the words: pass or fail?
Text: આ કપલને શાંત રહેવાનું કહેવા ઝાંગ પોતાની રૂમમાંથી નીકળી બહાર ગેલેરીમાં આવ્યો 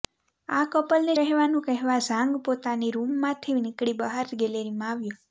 fail